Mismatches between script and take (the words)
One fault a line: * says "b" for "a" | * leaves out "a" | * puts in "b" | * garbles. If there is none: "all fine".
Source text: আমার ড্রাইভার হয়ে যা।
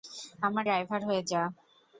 all fine